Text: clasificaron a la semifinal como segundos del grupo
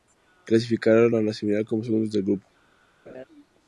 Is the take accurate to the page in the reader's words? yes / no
yes